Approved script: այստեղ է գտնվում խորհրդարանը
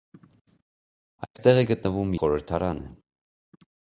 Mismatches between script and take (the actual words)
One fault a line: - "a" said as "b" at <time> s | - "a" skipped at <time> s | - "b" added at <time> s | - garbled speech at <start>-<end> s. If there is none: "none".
none